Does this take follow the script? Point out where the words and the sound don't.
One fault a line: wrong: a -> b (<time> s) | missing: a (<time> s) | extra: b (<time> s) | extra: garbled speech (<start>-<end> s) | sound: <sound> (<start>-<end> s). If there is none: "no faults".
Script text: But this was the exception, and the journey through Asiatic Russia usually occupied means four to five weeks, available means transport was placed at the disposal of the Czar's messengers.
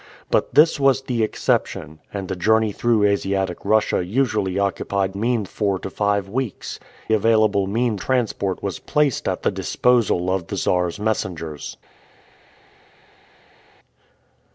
no faults